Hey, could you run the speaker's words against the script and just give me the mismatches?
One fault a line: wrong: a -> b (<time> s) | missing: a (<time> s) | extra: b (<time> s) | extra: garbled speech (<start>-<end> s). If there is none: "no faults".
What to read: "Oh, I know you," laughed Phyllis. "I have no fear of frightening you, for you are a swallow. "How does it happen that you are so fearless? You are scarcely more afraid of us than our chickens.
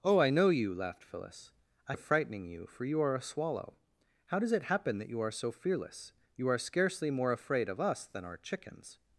missing: have no fear (1.9 s)